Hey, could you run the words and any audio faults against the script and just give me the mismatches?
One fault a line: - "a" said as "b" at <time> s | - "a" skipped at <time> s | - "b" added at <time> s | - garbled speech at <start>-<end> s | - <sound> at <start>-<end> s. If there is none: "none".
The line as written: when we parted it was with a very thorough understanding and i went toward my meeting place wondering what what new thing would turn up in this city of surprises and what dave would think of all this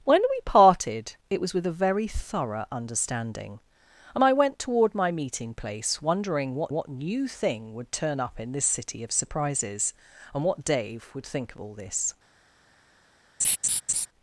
- laugh at 13.4-14.1 s